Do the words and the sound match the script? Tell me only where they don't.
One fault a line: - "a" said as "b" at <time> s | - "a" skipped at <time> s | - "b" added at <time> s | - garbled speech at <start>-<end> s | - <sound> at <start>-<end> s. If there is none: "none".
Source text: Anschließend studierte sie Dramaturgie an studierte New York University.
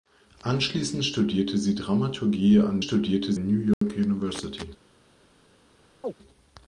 - dropout at 3.7-3.8 s
- chirp at 6.0-6.1 s